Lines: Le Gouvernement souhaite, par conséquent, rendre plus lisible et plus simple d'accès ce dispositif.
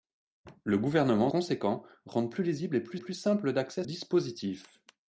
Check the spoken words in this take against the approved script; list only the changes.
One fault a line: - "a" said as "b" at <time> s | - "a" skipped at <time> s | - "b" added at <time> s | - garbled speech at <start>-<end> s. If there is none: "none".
- "souhaite par" skipped at 1.3 s
- "plus" added at 3.0 s
- "ce" skipped at 3.8 s